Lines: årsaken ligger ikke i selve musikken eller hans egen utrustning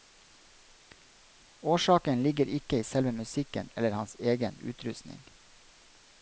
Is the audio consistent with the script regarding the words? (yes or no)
yes